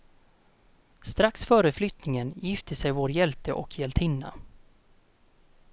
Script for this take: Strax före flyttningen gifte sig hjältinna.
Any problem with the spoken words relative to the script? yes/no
yes